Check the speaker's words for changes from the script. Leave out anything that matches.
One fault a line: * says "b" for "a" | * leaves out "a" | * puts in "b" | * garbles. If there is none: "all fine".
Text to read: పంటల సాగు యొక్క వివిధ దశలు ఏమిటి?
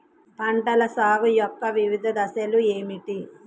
all fine